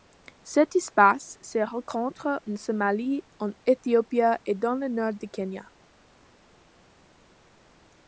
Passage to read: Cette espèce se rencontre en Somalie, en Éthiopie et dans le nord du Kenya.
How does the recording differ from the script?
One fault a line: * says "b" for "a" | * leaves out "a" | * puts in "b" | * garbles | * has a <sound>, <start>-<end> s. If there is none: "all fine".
all fine